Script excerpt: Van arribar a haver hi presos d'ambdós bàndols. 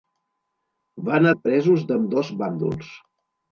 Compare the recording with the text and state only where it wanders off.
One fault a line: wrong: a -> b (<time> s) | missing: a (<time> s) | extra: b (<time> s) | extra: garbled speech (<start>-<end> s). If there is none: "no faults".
missing: arribar a haver (1.3 s)